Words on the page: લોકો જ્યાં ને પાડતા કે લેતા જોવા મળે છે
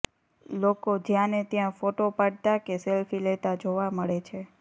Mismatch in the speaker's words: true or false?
true